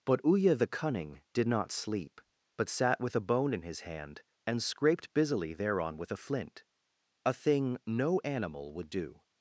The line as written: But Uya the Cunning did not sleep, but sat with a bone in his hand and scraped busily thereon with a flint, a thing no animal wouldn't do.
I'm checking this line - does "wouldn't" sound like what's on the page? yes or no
no